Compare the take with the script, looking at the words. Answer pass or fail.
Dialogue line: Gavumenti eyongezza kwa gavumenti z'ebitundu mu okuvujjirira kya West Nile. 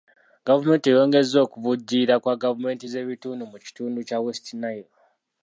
fail